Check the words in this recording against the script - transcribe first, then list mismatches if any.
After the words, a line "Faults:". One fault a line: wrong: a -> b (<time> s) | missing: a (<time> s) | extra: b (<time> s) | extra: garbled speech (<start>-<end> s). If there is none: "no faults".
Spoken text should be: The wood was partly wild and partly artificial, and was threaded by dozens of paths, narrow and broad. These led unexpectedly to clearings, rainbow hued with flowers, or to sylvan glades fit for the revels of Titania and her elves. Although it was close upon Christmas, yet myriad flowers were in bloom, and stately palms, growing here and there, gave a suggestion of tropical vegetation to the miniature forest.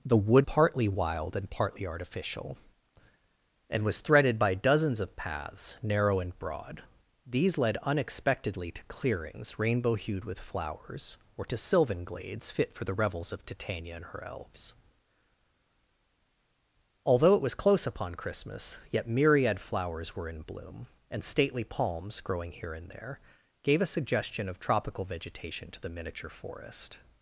The wood partly wild and partly artificial, and was threaded by dozens of paths, narrow and broad. These led unexpectedly to clearings, rainbow hued with flowers, or to sylvan glades fit for the revels of Titania and her elves. Although it was close upon Christmas, yet myriad flowers were in bloom, and stately palms, growing here and there, gave a suggestion of tropical vegetation to the miniature forest.
Faults:
missing: was (0.5 s)